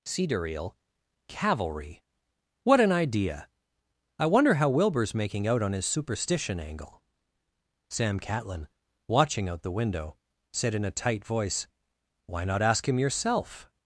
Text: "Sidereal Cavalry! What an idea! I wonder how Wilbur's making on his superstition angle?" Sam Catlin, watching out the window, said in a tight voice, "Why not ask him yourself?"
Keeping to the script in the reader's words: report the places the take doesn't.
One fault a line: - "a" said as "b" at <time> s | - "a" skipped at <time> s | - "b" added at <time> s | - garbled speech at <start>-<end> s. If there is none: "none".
- "out" added at 5.5 s